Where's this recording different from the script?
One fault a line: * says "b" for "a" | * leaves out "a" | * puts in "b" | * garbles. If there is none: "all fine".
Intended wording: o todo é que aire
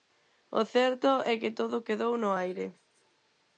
* says "certo" for "todo"
* puts in "todo quedou no"